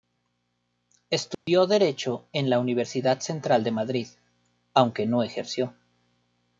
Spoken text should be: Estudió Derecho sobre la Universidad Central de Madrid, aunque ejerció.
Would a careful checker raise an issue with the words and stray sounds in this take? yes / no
yes